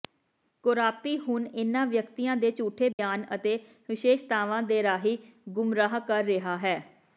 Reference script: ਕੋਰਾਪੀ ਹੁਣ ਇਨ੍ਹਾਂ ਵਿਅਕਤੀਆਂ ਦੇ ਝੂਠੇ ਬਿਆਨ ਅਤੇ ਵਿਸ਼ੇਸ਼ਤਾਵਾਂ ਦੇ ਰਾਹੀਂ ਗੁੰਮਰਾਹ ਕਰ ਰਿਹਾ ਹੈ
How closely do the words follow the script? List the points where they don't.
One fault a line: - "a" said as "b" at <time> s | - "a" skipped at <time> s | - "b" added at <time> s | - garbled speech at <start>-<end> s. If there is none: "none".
none